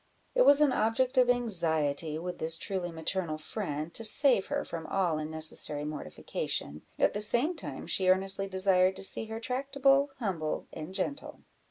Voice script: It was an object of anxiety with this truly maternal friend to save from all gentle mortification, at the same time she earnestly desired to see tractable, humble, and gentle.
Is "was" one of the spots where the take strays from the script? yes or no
no